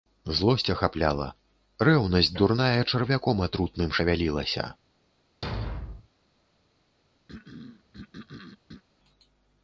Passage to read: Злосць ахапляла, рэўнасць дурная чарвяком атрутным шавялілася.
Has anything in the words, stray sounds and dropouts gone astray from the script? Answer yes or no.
yes